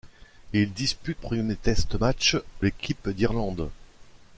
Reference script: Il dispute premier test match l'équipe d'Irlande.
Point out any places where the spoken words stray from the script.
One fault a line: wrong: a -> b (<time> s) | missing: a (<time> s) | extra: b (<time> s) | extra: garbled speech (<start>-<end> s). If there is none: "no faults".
no faults